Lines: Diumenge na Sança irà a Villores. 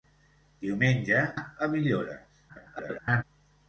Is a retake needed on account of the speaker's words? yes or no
yes